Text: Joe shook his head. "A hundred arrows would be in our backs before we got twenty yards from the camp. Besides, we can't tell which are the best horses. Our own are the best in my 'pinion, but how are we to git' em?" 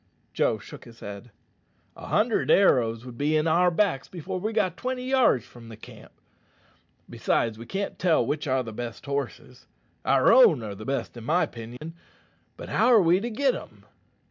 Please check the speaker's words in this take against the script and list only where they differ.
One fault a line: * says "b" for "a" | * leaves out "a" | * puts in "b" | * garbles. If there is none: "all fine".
all fine